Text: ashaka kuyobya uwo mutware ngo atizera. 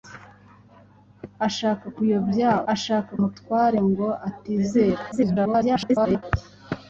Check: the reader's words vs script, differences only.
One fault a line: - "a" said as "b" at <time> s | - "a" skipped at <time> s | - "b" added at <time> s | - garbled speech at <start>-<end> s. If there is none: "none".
- "uwo" said as "ashaka" at 2.7 s
- garbled speech at 5.1-6.2 s